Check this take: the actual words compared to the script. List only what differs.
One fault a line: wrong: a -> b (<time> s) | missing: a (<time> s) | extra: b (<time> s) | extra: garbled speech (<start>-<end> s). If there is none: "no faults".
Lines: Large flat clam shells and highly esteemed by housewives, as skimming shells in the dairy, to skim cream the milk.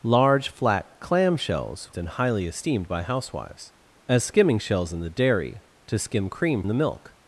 no faults